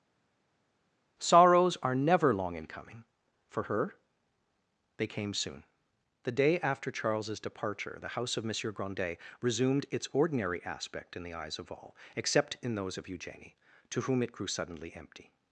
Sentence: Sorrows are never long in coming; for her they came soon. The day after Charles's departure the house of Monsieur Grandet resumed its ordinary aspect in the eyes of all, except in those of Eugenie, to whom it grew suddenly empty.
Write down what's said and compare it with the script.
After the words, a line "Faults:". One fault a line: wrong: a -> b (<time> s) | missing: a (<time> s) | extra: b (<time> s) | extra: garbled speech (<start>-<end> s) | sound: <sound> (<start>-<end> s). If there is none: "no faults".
Sorrows are never long in coming; for her they came soon. The day after Charles's departure the house of Monsieur Grandet resumed its ordinary aspect in the eyes of all, except in those of Eugenie, to whom it grew suddenly empty.
Faults:
no faults